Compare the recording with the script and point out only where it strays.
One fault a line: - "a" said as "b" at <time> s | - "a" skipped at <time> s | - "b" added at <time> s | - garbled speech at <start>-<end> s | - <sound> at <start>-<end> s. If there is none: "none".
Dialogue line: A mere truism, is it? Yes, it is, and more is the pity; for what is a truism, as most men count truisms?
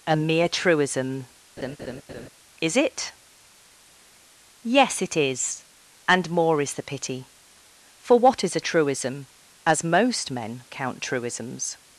- laugh at 1.6-2.3 s